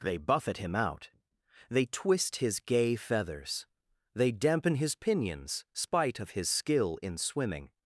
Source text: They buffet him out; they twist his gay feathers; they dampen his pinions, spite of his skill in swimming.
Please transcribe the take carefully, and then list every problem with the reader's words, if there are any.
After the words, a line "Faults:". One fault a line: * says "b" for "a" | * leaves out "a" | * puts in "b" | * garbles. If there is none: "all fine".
They buffet him out; they twist his gay feathers; they dampen his pinions, spite of his skill in swimming.
Faults:
all fine